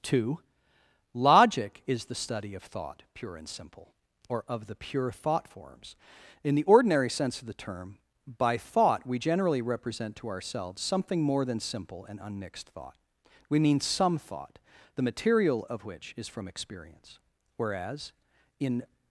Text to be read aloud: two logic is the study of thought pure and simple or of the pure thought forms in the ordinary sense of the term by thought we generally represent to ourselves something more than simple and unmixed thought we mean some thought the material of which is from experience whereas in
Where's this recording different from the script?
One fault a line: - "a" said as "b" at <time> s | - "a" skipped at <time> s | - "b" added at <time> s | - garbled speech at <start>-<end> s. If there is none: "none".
none